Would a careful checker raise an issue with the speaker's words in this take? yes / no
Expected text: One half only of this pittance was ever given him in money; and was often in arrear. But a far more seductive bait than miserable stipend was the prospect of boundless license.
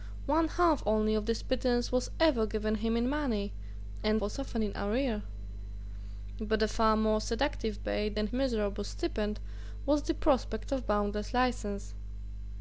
no